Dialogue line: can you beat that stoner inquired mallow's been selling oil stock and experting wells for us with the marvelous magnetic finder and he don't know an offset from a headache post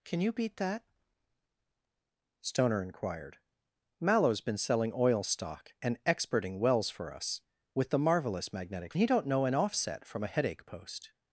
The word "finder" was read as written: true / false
false